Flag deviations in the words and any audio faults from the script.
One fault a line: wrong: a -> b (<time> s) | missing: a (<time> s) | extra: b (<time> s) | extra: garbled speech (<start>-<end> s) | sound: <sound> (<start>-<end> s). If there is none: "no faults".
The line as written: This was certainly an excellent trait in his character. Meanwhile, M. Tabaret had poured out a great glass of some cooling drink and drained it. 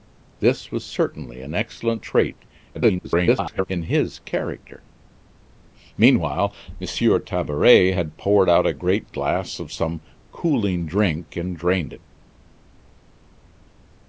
extra: garbled speech (2.7-3.7 s)